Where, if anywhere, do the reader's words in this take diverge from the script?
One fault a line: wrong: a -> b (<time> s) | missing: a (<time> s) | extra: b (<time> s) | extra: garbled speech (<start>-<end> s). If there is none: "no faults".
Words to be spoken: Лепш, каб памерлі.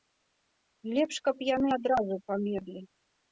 extra: яны адразу (1.5 s)